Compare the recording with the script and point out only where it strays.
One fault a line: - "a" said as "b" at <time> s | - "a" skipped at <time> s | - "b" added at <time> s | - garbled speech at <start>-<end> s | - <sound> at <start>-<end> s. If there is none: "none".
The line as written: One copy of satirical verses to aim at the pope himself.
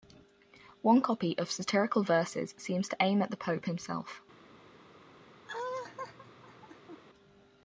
- "seems" added at 2.6 s
- laugh at 5.4-7.0 s